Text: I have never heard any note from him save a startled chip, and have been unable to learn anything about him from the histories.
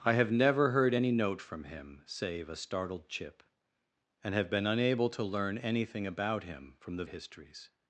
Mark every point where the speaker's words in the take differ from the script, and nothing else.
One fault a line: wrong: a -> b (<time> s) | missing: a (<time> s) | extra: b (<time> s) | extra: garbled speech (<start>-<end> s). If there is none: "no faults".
no faults